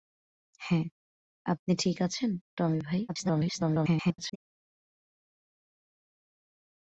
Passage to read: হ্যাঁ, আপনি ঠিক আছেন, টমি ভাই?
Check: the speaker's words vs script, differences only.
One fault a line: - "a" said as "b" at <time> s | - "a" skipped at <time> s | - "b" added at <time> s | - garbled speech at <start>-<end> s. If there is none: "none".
- garbled speech at 3.1-4.4 s